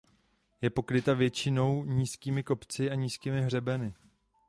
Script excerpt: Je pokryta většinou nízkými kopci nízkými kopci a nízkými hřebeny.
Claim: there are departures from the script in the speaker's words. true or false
true